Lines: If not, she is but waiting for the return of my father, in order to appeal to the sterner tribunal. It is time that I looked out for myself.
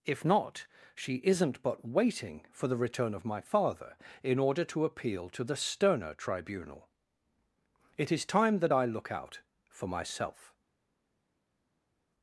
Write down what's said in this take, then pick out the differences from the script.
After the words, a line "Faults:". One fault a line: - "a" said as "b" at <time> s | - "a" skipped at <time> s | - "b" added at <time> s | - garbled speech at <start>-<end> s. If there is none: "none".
If not, she isn't but waiting for the return of my father, in order to appeal to the sterner tribunal. It is time that I look out for myself.
Faults:
- "is" said as "isn't" at 1.2 s
- "looked" said as "look" at 8.8 s